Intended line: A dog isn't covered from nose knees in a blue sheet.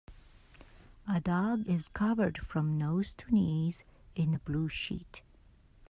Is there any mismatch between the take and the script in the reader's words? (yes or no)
yes